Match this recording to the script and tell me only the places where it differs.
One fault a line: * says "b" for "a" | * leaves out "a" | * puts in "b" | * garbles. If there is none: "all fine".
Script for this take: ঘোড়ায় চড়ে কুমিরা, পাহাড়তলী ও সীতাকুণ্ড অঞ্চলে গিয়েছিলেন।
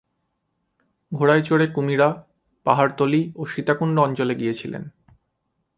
all fine